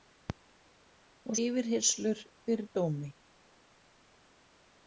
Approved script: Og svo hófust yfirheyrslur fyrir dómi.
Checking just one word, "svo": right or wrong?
wrong